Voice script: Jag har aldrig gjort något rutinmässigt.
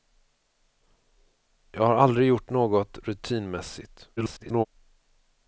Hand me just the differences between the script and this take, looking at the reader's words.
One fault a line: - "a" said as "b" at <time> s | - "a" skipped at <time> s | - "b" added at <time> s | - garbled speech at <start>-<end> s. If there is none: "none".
- garbled speech at 4.2-4.7 s